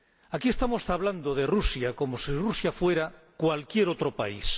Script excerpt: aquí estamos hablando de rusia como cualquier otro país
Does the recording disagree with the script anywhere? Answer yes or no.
yes